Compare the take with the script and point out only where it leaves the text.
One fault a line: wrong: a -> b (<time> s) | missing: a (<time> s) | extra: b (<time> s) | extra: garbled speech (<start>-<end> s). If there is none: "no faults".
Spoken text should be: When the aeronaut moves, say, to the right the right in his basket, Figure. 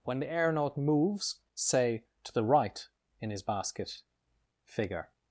missing: the right (2.9 s)